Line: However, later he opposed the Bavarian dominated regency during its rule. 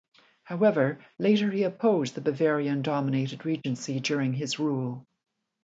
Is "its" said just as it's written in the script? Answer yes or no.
no